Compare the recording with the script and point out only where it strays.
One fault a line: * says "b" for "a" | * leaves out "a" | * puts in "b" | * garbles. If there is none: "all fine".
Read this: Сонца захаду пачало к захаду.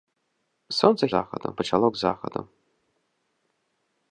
all fine